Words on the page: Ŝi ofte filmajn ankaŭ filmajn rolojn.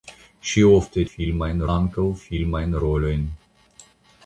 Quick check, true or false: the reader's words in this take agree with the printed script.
true